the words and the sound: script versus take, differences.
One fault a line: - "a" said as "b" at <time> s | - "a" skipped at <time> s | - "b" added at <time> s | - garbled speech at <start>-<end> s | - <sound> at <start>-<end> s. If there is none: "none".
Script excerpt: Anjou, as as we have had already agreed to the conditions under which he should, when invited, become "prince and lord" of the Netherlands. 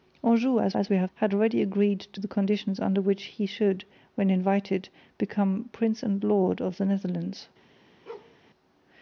- bark at 8.1-8.4 s